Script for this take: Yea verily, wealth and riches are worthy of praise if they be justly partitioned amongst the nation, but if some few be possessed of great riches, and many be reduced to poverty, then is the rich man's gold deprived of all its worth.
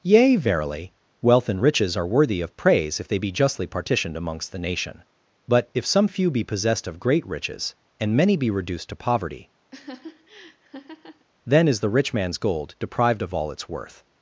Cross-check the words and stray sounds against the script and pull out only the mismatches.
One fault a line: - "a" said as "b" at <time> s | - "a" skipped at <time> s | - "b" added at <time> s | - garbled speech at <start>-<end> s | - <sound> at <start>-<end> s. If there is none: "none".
- laugh at 9.7-11.3 s